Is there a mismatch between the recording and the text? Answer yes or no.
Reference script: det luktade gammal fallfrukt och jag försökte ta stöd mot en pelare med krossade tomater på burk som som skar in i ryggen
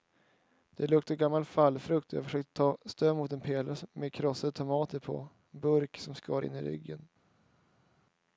yes